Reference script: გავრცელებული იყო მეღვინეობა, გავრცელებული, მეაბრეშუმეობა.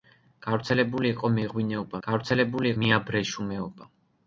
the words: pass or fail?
pass